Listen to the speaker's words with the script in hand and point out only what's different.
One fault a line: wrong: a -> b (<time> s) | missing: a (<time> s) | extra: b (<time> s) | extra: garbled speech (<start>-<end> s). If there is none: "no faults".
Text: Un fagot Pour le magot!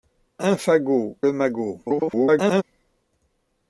missing: Pour (1.1 s)
extra: garbled speech (1.8-2.6 s)